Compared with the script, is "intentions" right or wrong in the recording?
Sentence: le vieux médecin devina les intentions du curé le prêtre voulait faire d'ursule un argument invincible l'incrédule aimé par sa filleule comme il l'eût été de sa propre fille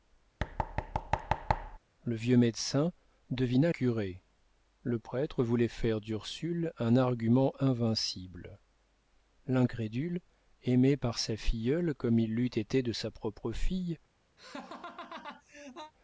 wrong